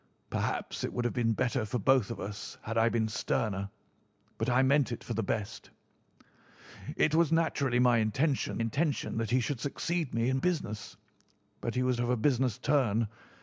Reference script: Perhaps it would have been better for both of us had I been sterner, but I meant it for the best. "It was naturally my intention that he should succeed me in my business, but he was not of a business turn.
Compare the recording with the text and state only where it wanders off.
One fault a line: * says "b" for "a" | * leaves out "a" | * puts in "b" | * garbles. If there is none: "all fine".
* puts in "intention"
* leaves out "my"
* leaves out "not"